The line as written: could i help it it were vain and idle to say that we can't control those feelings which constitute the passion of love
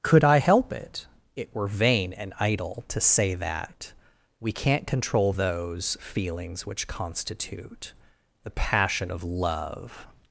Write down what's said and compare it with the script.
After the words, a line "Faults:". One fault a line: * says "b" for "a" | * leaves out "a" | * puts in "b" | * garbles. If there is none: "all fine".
could i help it it were vain and idle to say that we can't control those feelings which constitute the passion of love
Faults:
all fine